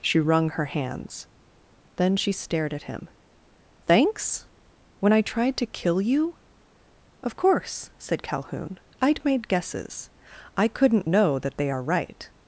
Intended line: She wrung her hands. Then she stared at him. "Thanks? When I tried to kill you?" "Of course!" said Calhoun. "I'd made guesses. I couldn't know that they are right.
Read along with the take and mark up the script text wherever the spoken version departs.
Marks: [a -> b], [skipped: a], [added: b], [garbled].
She wrung her hands. Then she stared at him. "Thanks? When I tried to kill you?" "Of course!" said Calhoun. "I'd made guesses. I couldn't know that they are right.